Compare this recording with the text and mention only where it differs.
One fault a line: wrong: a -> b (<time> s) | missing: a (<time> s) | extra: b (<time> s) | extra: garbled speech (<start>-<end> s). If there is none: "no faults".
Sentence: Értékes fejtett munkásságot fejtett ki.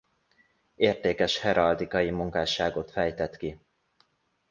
wrong: fejtett -> heraldikai (1.4 s)